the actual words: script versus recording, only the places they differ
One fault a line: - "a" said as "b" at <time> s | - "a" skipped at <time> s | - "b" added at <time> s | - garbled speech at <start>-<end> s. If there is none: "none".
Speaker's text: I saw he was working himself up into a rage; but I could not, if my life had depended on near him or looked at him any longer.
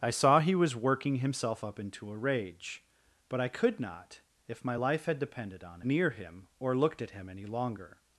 none